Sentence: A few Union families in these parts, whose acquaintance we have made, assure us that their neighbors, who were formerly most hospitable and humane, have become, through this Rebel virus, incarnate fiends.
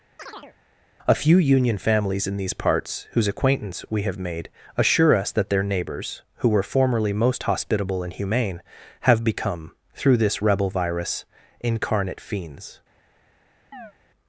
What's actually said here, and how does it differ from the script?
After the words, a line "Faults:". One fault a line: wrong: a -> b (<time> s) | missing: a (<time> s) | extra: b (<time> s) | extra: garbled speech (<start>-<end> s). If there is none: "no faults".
A few Union families in these parts, whose acquaintance we have made, assure us that their neighbors, who were formerly most hospitable and humane, have become, through this Rebel virus, incarnate fiends.
Faults:
no faults